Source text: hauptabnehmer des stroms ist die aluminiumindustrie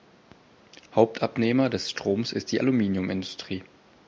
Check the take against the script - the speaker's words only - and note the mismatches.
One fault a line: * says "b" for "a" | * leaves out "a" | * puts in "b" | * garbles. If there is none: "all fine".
all fine